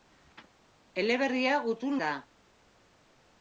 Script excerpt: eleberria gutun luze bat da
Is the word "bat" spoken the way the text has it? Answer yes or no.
no